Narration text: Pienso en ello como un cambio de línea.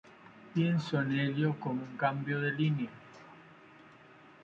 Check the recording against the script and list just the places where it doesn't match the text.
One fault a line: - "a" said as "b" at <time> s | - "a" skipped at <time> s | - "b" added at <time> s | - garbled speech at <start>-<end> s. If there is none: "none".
none